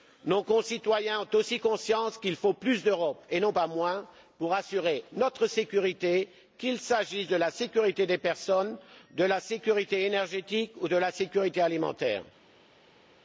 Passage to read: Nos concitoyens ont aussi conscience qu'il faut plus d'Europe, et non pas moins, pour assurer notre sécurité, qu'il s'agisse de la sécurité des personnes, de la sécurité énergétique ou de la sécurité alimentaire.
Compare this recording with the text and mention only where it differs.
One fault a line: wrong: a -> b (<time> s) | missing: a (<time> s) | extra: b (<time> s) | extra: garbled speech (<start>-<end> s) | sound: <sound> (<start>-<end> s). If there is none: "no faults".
no faults